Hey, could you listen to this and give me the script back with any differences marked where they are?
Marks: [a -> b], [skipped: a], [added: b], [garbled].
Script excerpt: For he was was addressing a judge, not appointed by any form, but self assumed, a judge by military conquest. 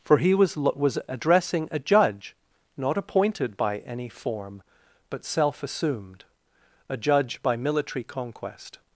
For he was was addressing a judge, not appointed by any form, but self assumed, a judge by military conquest.